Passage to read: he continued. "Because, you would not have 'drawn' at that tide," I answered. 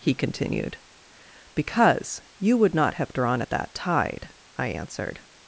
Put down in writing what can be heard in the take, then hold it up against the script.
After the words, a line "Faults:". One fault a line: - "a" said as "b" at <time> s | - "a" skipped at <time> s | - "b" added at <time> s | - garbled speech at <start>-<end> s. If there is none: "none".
he continued. "Because, you would not have 'drawn' at that tide," I answered.
Faults:
none